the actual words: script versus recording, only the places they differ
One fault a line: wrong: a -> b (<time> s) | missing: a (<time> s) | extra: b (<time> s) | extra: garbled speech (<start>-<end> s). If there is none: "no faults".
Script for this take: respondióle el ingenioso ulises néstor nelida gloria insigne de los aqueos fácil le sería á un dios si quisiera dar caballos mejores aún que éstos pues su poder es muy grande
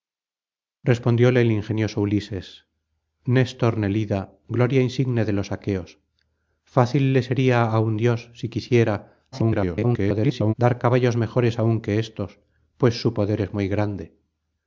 extra: garbled speech (9.3-10.5 s)